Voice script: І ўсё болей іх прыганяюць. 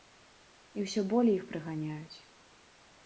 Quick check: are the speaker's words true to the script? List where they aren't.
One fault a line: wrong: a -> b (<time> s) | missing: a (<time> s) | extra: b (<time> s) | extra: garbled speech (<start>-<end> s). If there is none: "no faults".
no faults